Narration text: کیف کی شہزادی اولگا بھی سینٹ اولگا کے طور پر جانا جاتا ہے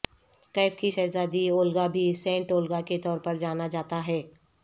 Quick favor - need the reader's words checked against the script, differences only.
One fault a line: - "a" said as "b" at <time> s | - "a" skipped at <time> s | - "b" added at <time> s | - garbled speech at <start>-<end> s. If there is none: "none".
none